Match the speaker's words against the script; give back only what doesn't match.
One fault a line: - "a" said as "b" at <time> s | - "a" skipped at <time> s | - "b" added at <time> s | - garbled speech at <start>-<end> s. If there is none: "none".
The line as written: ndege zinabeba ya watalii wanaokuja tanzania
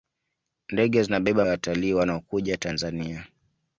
none